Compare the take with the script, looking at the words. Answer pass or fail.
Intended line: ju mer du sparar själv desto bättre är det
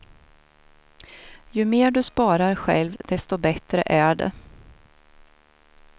pass